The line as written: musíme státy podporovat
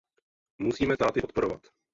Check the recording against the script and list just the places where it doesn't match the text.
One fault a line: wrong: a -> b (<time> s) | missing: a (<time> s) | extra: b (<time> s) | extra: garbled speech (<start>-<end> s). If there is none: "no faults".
no faults